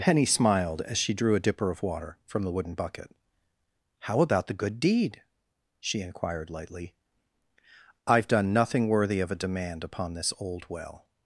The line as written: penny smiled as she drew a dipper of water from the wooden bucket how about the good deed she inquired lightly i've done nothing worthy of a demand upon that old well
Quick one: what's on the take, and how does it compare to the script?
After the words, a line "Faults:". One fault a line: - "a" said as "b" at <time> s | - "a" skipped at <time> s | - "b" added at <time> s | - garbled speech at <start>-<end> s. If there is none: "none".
penny smiled as she drew a dipper of water from the wooden bucket how about the good deed she inquired lightly i've done nothing worthy of a demand upon this old well
Faults:
- "that" said as "this" at 10.2 s